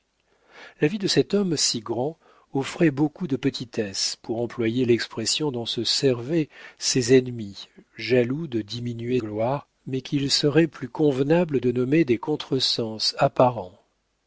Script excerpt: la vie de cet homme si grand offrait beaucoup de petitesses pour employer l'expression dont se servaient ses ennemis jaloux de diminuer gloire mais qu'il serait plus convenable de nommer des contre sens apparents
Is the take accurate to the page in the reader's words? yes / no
yes